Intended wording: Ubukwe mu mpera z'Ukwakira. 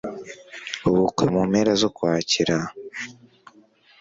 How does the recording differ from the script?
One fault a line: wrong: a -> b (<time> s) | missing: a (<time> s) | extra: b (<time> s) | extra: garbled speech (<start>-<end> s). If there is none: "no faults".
no faults